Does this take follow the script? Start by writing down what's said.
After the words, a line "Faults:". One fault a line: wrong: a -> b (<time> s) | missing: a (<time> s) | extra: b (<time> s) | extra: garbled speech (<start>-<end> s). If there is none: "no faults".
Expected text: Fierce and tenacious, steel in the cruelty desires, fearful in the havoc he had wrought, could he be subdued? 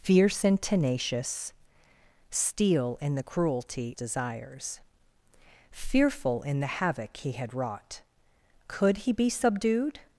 Fierce and tenacious, steel in the cruelty desires, fearful in the havoc he had wrought, could he be subdued?
Faults:
no faults